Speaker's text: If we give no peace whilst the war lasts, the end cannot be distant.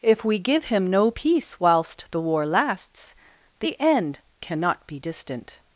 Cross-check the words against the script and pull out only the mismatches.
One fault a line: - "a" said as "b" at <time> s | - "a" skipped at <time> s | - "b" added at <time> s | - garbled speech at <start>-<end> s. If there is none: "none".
- "him" added at 0.7 s